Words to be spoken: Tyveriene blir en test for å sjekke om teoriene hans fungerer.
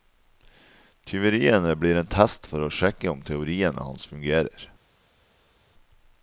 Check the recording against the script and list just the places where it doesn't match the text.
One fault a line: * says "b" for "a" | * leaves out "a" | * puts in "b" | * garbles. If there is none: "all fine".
all fine